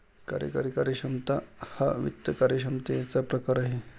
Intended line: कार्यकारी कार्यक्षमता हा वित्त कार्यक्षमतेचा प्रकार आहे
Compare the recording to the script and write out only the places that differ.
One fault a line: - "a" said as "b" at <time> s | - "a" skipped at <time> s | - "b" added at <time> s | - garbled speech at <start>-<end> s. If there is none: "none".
none